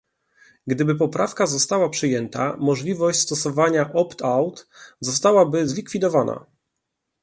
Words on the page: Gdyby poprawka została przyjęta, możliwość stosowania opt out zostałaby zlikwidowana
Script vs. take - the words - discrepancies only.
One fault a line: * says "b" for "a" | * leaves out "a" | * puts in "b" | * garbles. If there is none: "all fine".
all fine